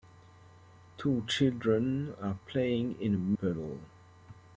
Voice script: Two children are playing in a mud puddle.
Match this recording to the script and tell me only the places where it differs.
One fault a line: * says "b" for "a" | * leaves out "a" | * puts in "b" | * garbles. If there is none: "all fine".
* leaves out "mud"